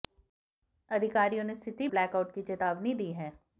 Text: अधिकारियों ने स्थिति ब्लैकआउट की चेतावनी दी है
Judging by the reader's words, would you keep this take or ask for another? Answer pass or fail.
pass